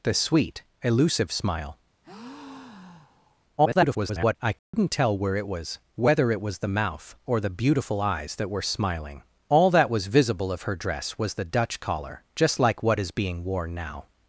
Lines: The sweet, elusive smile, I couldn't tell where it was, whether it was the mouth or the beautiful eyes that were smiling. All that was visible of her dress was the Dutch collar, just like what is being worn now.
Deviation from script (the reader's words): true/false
true